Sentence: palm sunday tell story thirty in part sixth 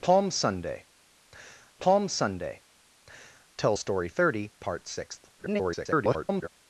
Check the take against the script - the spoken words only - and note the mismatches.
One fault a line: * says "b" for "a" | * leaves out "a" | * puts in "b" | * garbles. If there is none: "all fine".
* puts in "palm sunday"
* leaves out "in"
* garbles